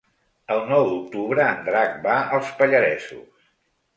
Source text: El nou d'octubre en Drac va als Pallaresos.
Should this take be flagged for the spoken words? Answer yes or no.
no